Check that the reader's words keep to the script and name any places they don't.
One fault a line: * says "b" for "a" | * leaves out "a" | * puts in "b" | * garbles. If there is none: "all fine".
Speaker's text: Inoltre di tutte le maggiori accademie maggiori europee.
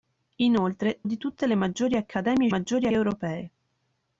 all fine